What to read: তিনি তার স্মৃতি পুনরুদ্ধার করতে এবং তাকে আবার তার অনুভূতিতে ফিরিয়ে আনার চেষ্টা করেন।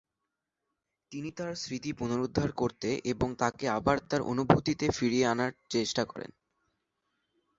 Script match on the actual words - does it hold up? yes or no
yes